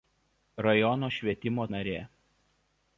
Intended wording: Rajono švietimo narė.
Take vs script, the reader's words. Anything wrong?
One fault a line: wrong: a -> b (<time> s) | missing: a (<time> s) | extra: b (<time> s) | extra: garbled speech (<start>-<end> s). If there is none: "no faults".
no faults